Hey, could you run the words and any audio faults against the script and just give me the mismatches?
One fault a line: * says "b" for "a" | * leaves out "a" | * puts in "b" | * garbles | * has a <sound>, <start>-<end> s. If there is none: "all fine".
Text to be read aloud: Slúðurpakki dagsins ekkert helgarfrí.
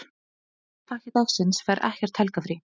* puts in "fær"